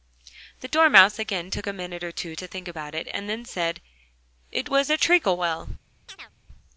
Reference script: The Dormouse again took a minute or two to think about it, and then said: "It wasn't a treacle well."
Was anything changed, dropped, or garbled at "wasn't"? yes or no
yes